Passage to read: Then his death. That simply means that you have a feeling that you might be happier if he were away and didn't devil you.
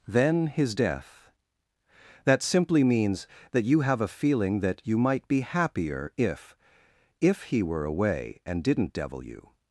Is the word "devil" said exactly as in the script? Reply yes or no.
yes